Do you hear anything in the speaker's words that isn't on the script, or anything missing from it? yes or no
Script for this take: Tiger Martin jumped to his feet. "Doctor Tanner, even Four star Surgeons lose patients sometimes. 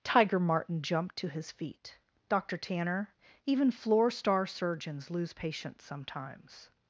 yes